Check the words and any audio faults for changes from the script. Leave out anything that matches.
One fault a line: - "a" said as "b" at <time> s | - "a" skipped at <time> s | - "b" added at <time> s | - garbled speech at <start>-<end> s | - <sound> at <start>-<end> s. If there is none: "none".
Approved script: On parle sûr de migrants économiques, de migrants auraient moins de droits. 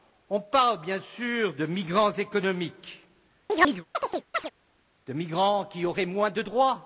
- "bien" added at 0.8 s
- chirp at 3.5-4.5 s
- "qui" added at 5.6 s